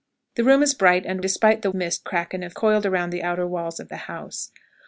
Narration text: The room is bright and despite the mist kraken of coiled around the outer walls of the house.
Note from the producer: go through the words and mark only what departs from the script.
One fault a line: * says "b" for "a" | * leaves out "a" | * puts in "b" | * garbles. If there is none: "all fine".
all fine